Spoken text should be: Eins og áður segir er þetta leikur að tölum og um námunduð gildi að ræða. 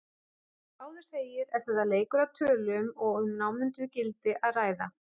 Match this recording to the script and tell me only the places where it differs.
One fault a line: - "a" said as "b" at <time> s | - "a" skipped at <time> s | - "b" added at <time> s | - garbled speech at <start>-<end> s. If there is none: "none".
none